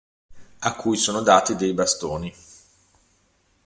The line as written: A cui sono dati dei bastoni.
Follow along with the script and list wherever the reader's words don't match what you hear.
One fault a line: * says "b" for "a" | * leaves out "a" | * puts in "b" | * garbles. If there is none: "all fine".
all fine